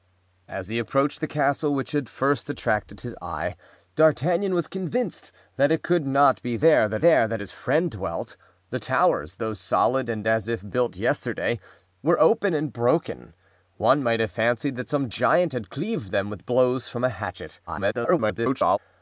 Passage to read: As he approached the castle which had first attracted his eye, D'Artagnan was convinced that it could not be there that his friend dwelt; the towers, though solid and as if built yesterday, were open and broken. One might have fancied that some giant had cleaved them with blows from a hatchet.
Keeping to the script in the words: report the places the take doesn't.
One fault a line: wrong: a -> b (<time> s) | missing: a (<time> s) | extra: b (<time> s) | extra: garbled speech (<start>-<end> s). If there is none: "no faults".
extra: there that (7.0 s)
extra: garbled speech (17.7-18.8 s)